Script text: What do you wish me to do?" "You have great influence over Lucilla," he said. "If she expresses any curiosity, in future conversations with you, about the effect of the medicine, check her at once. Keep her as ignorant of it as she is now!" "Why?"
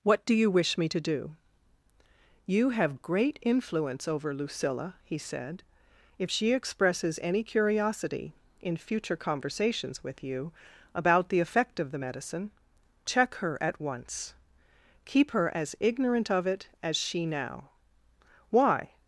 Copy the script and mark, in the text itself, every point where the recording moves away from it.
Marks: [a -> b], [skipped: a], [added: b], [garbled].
What do you wish me to do?" "You have great influence over Lucilla," he said. "If she expresses any curiosity, in future conversations with you, about the effect of the medicine, check her at once. Keep her as ignorant of it as she [skipped: is] now!" "Why?"